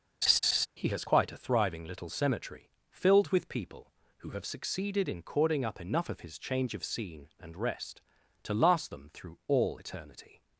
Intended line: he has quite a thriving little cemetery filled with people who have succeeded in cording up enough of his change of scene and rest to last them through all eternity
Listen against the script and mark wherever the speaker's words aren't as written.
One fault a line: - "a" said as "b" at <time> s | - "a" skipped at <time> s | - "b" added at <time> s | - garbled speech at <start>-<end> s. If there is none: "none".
none